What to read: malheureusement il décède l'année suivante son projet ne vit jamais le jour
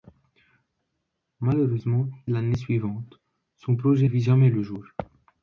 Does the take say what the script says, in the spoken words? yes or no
no